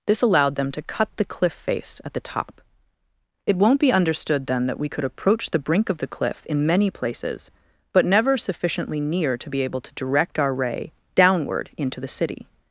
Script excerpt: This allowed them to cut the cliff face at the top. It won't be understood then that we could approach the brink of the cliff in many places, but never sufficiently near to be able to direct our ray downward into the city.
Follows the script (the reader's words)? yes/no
yes